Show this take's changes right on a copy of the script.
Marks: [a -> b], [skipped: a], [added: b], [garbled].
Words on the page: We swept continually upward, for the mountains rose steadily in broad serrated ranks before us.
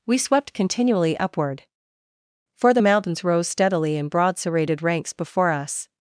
We swept continually upward, for the mountains rose steadily in broad serrated ranks before us.